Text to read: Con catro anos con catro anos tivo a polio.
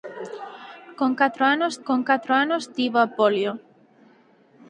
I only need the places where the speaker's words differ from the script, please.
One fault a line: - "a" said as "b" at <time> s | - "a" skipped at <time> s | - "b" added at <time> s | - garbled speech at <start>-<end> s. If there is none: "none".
none